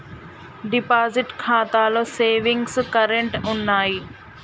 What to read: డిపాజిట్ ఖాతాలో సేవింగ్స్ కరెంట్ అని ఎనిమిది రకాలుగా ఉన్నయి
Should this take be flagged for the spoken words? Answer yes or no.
yes